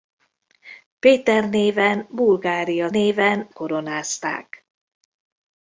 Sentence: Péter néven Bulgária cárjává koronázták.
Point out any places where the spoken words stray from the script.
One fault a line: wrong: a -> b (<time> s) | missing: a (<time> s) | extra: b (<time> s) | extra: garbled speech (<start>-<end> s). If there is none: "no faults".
wrong: cárjává -> néven (2.9 s)